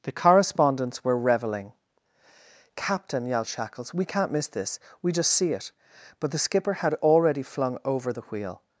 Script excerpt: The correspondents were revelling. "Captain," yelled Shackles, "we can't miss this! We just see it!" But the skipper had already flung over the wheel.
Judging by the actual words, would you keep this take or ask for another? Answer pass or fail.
pass